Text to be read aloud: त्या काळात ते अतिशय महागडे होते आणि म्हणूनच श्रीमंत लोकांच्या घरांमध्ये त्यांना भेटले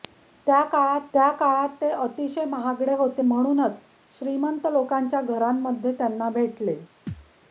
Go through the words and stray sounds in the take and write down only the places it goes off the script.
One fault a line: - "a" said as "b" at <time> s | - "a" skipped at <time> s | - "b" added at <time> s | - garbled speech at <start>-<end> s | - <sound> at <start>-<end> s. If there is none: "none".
- "त्या काळात" added at 1.1 s
- "आणि" skipped at 3.2 s
- thud at 7.1-7.3 s